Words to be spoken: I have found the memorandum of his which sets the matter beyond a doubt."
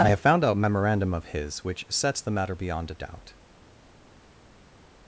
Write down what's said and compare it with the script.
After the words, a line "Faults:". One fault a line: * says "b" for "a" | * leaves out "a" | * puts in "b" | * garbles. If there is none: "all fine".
I have found a memorandum of his which sets the matter beyond a doubt."
Faults:
* says "a" for "the"